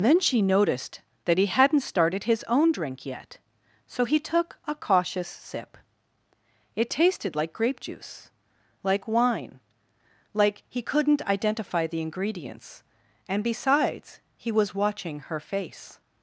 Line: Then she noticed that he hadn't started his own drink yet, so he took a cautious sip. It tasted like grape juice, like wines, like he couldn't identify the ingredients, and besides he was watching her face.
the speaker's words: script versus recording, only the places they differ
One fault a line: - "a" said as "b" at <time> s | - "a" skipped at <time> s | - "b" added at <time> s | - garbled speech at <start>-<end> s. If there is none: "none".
- "wines" said as "wine" at 9.1 s